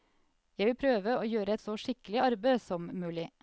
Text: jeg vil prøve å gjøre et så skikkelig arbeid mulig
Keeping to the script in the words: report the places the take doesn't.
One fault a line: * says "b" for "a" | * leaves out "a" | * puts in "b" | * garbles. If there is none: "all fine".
* puts in "som"